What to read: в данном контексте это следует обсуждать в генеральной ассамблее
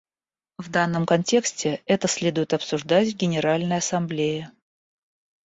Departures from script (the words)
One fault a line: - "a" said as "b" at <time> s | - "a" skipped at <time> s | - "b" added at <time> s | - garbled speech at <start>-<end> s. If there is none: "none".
none